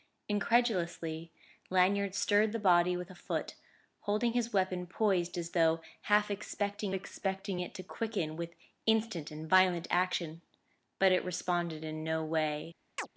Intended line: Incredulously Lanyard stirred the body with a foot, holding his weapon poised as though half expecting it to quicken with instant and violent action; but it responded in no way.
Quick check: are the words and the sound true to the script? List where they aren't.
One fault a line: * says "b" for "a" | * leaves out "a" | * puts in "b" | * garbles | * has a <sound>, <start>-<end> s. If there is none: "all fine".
* puts in "expecting"
* has a chirp, 13.0-13.1 s